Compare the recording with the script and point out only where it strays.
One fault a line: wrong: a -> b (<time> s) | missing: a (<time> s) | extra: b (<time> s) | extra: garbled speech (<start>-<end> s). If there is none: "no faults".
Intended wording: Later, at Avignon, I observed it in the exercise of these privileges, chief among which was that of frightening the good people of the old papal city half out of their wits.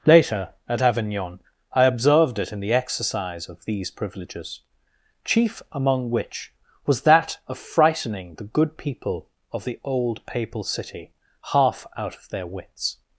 no faults